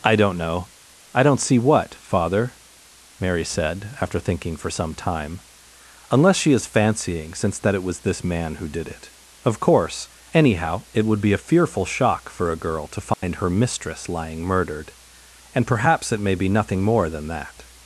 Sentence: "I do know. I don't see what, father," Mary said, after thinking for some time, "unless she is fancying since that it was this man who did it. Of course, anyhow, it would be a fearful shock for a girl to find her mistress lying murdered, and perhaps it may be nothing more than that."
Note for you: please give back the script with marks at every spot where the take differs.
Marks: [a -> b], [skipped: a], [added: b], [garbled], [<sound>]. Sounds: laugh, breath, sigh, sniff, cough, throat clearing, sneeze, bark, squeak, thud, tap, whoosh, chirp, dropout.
"I [do -> don't] know. I don't see what, father," Mary said, after thinking for some time, "unless she is fancying since that it was this man who did it. Of course, anyhow, it would be a fearful shock for a girl to find [dropout] her mistress lying murdered, and perhaps it may be nothing more than that."